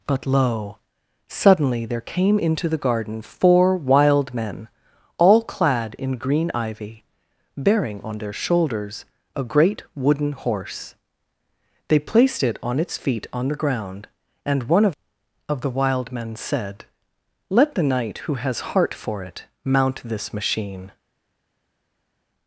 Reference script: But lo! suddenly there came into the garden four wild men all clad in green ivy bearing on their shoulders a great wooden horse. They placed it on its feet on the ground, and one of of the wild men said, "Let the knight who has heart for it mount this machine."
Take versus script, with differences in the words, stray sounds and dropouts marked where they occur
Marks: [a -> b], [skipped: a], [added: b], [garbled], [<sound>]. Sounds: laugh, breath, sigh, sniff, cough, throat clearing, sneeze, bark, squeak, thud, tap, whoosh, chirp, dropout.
But lo! suddenly there came into the garden four wild men all clad in green ivy bearing on their shoulders a great wooden horse. They placed it on its feet on the ground, and one of of the wild men said, "Let the knight who has heart for it mount this machine."